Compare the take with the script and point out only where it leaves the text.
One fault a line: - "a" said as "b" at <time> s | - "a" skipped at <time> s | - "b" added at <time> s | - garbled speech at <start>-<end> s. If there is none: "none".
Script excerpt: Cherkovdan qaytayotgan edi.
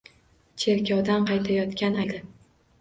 none